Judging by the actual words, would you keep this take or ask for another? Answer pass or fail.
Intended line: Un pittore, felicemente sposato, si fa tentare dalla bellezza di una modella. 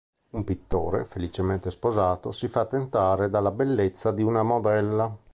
pass